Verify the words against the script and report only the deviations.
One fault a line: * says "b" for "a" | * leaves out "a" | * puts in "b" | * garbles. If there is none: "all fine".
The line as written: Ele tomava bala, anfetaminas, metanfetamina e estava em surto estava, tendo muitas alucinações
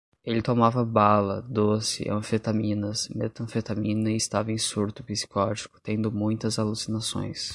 * puts in "doce"
* says "psicótico" for "estava"